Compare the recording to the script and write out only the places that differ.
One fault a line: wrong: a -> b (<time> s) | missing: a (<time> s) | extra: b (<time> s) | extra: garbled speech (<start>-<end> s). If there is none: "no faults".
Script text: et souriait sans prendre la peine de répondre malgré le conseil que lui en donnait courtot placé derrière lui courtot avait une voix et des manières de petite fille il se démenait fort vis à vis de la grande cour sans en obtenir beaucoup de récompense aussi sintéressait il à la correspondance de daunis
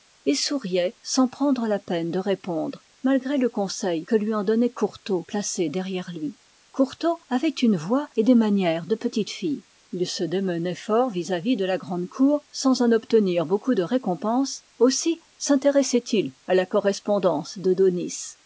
no faults